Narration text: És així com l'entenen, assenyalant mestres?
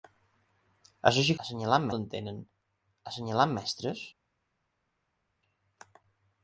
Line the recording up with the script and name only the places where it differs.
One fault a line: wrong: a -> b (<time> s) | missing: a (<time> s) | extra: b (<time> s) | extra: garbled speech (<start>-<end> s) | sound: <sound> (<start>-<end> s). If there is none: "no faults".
wrong: com -> assenyalant (1.5 s)